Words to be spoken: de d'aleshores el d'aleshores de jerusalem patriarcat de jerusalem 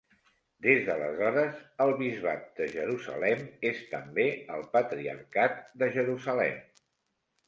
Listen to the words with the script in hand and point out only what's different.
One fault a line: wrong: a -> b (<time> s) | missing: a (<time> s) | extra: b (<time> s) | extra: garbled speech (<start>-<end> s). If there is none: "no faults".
wrong: de -> des (0.7 s)
wrong: d'aleshores -> bisbat (2.0 s)
extra: és també el (3.7 s)